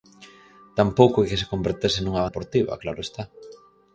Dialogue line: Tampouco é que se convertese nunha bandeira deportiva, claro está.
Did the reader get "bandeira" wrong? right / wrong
wrong